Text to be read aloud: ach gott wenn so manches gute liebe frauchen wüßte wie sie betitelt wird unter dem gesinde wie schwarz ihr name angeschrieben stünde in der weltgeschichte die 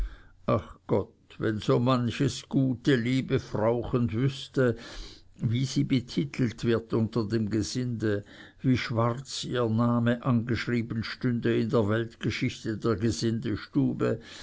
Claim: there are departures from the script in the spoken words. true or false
true